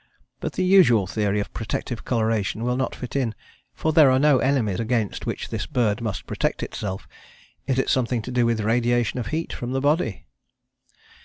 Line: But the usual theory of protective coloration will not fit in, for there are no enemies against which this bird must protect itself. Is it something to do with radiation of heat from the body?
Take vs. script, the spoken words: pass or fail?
pass